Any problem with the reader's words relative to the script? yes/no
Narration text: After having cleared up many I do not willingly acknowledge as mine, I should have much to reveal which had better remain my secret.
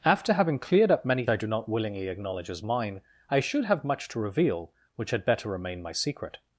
no